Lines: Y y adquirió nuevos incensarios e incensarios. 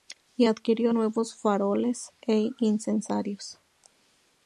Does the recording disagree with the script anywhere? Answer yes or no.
yes